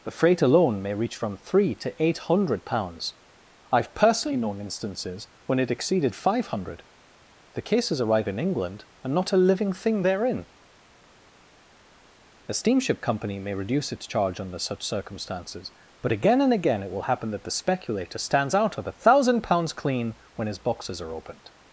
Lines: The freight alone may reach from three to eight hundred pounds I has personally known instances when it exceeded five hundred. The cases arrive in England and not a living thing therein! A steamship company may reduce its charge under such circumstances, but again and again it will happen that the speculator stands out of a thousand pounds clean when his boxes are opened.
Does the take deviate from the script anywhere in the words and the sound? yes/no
yes